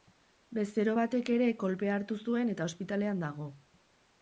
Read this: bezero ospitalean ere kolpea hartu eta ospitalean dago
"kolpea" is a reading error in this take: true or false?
false